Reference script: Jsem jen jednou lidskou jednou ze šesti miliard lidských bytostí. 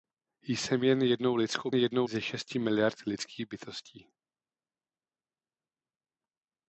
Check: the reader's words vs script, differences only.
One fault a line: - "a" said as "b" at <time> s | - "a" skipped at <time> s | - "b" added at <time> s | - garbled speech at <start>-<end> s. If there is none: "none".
none